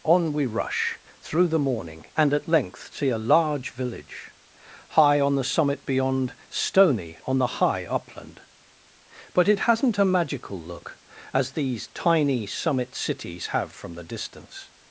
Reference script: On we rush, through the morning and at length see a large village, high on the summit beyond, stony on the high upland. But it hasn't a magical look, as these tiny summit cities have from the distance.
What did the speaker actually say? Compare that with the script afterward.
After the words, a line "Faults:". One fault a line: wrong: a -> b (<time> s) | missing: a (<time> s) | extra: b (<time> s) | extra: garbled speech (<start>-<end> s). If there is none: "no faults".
On we rush, through the morning and at length see a large village, high on the summit beyond, stony on the high upland. But it hasn't a magical look, as these tiny summit cities have from the distance.
Faults:
no faults